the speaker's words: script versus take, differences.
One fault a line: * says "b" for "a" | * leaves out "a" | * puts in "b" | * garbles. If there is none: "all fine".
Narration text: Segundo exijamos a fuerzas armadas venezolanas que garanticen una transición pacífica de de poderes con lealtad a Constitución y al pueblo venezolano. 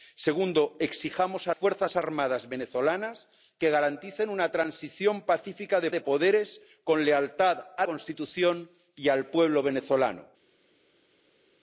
all fine